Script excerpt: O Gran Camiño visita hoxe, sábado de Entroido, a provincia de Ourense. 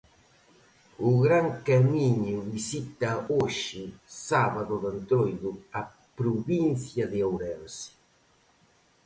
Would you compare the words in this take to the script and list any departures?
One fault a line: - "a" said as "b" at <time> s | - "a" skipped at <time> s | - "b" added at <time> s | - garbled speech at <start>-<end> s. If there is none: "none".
none